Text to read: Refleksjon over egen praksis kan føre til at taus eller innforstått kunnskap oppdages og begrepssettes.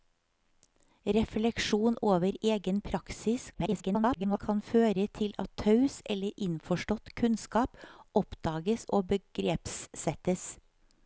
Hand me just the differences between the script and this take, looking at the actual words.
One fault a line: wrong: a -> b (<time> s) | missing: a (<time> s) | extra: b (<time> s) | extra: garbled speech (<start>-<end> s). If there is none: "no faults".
extra: garbled speech (3.5-4.4 s)